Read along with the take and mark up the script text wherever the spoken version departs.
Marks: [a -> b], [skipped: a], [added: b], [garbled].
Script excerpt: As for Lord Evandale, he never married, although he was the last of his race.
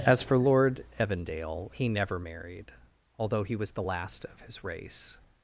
As for Lord Evandale, he never married, although he was the last of his race.